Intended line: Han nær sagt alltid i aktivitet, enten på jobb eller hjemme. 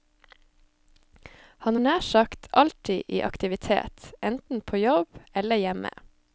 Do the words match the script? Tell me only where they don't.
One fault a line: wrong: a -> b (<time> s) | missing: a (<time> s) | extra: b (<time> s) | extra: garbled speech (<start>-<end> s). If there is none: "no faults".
no faults